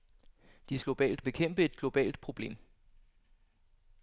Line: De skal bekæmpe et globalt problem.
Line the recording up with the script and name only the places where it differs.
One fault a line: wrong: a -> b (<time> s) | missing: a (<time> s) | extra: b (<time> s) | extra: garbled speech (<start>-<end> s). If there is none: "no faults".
wrong: skal -> globalt (0.8 s)